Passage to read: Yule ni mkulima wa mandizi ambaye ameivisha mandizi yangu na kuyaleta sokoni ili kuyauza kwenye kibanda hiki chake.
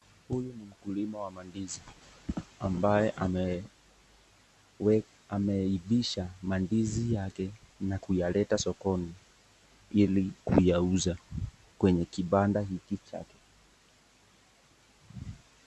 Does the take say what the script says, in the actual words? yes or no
no